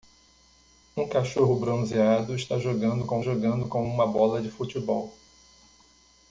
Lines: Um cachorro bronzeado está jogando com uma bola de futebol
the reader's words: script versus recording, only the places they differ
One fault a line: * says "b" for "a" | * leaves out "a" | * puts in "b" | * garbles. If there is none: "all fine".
* puts in "jogando com"